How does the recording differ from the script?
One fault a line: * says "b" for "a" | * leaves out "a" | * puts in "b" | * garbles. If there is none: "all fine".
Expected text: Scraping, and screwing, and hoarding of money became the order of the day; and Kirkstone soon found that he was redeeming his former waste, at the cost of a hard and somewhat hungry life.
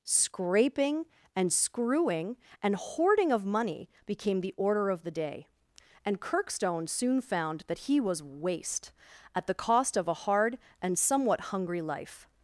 * leaves out "redeeming his former"